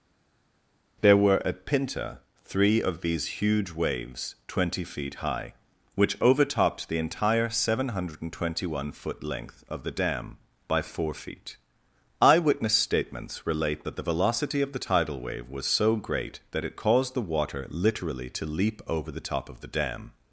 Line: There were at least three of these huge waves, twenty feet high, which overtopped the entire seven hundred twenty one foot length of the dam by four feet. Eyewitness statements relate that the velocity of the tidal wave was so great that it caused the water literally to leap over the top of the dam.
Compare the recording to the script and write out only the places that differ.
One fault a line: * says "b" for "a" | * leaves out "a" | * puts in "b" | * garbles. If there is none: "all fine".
* says "pinta" for "least"